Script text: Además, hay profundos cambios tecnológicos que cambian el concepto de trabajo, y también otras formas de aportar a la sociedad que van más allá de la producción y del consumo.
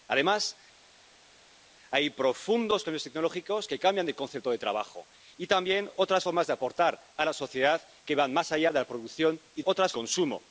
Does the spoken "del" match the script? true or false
false